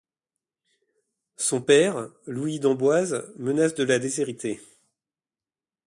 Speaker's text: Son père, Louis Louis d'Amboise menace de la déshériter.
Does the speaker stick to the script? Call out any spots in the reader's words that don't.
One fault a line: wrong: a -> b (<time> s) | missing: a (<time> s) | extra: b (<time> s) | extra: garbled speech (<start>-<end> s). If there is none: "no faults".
missing: Louis (2.6 s)